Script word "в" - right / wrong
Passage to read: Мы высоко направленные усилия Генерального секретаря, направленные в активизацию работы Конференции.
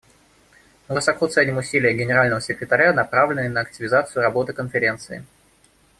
wrong